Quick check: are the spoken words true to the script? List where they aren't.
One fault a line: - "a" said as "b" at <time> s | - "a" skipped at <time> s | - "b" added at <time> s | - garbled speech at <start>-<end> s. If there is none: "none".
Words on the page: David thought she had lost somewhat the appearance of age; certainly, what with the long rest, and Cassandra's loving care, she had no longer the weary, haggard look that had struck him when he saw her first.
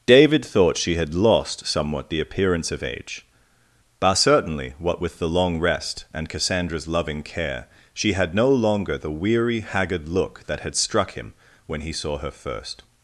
- "but" added at 4.0 s